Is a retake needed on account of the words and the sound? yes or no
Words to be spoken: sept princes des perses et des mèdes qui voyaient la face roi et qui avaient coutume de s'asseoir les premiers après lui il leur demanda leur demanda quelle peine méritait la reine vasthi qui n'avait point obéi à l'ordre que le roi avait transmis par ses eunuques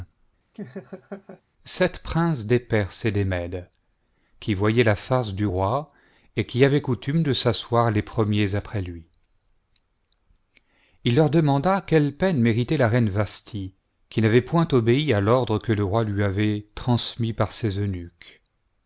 yes